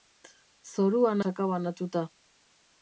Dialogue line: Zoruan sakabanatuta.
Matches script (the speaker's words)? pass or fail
pass